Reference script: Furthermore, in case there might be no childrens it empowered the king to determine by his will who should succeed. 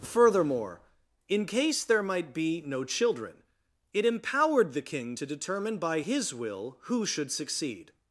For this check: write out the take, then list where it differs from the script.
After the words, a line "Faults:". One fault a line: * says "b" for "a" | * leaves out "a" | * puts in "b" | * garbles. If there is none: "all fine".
Furthermore, in case there might be no children it empowered the king to determine by his will who should succeed.
Faults:
* says "children" for "childrens"